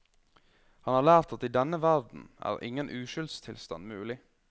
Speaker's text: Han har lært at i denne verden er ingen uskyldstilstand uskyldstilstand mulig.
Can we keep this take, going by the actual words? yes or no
no